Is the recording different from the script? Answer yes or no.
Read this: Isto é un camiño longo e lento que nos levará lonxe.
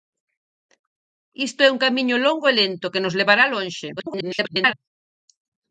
yes